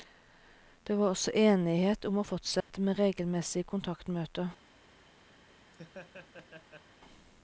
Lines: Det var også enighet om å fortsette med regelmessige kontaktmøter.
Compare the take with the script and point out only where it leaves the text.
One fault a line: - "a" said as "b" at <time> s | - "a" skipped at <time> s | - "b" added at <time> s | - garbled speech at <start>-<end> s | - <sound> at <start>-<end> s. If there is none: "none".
- dropout at 2.6-2.7 s
- laugh at 5.7-6.9 s